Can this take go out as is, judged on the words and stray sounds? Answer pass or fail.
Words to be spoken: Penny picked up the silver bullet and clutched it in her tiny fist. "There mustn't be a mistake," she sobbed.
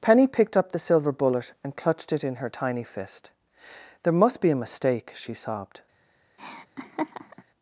fail